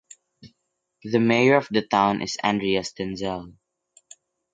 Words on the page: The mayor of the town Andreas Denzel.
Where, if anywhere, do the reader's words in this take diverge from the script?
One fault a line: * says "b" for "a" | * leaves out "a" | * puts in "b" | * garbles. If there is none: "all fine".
* puts in "is"